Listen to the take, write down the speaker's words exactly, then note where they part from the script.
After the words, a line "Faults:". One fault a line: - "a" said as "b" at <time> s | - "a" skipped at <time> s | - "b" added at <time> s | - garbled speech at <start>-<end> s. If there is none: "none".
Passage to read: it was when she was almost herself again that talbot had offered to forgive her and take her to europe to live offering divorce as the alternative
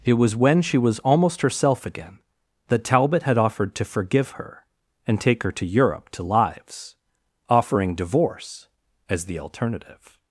it was when she was almost herself again that talbot had offered to forgive her and take her to europe to lives offering divorce as the alternative
Faults:
- "live" said as "lives" at 6.2 s